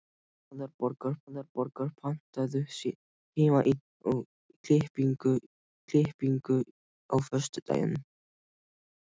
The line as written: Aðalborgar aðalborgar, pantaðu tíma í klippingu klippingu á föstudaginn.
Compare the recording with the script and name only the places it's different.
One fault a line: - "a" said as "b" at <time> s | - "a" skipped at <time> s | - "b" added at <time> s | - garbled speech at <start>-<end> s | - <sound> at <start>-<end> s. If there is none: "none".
none